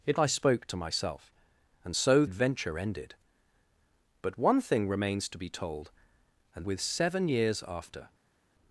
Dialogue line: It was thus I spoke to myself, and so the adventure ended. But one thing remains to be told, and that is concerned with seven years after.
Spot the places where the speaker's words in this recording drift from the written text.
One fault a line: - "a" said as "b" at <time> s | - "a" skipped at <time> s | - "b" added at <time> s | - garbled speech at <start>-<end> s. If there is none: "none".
- "was thus" skipped at 0.2 s
- "the" skipped at 2.2 s
- "that is concerned" skipped at 6.7 s